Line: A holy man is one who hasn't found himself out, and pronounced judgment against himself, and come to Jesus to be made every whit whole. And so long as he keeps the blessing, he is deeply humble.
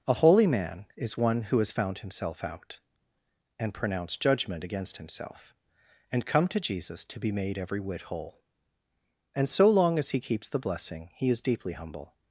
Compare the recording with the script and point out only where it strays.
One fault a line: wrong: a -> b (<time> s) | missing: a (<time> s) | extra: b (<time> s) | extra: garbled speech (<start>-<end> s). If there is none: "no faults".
wrong: hasn't -> has (1.6 s)